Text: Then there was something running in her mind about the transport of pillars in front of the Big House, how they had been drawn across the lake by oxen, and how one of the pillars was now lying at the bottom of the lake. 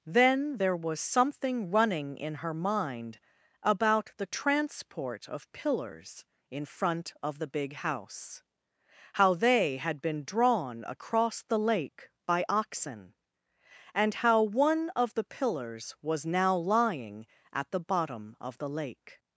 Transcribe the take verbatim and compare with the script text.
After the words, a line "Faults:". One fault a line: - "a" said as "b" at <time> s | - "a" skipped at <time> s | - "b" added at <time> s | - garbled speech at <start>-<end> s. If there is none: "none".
Then there was something running in her mind about the transport of pillars in front of the Big House, how they had been drawn across the lake by oxen, and how one of the pillars was now lying at the bottom of the lake.
Faults:
none